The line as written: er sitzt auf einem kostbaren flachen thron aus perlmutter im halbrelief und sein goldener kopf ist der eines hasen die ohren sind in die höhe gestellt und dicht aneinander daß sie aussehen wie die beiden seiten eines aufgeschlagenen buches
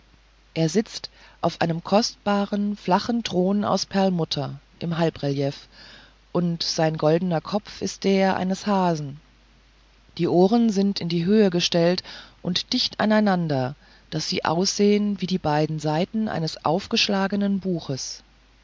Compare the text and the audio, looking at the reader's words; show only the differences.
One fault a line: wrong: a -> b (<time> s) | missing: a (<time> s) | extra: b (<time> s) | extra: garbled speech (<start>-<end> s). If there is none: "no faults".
no faults